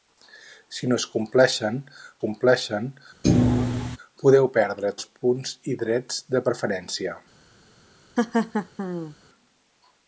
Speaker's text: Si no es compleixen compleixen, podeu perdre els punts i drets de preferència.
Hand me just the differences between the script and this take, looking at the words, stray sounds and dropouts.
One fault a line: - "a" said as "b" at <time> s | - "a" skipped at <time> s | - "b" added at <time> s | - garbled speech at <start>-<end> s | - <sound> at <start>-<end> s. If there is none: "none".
- thud at 3.2-4.0 s
- laugh at 8.2-9.2 s